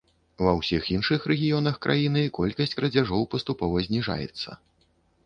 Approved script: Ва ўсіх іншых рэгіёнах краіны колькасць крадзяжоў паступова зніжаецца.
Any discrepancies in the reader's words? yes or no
no